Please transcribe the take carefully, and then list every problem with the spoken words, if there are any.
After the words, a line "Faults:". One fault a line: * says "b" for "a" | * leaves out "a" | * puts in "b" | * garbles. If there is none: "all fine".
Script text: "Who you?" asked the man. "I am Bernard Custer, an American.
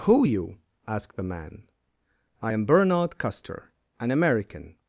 "Who you?" asked the man. "I am Bernard Custer, an American.
Faults:
all fine